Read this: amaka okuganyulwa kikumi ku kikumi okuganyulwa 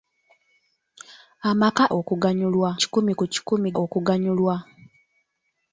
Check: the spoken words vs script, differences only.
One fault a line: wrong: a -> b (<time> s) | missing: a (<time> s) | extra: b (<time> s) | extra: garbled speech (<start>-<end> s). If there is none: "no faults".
no faults